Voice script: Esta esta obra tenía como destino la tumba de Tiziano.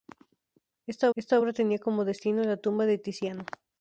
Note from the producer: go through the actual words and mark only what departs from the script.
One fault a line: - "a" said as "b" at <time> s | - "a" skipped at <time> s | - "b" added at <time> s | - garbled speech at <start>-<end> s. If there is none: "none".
none